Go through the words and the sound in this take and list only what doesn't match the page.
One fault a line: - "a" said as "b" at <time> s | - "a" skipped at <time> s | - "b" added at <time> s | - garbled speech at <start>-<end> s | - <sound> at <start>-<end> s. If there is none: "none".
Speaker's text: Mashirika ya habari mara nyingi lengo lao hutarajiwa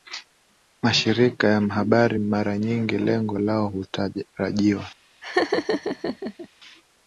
- laugh at 5.2-6.5 s